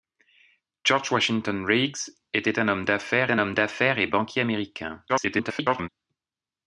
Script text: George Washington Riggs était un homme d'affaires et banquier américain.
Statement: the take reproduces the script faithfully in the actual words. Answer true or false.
false